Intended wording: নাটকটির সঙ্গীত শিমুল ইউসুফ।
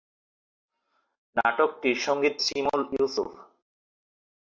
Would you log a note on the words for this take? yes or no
no